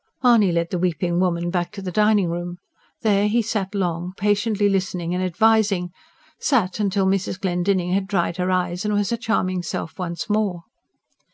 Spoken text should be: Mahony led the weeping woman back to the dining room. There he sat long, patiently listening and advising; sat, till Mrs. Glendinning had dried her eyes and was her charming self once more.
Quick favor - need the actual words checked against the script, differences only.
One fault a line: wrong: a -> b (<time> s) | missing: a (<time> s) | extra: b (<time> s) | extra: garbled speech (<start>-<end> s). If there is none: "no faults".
no faults